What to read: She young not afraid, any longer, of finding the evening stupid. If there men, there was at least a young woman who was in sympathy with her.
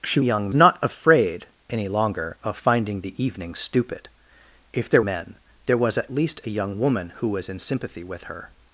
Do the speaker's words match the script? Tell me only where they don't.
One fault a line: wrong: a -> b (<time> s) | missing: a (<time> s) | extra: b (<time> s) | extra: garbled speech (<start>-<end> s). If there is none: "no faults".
no faults